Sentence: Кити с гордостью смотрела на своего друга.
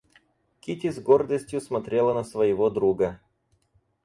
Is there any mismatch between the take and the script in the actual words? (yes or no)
no